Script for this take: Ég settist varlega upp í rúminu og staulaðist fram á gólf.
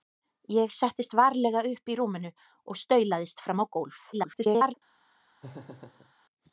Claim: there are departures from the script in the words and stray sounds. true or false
true